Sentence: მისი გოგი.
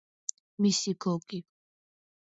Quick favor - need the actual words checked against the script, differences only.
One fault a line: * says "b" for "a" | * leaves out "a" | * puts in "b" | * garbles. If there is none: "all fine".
all fine